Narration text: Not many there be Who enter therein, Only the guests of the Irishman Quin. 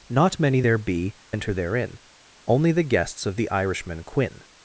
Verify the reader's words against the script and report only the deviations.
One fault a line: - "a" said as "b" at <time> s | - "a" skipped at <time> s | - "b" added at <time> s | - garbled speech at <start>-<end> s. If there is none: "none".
- "Who" skipped at 1.1 s